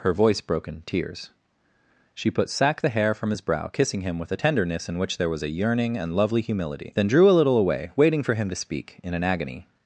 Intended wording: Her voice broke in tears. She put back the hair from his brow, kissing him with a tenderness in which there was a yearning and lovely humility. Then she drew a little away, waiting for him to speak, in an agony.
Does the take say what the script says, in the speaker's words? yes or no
no